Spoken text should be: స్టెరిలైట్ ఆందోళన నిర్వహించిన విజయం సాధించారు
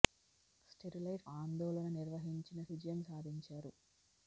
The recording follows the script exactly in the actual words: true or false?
true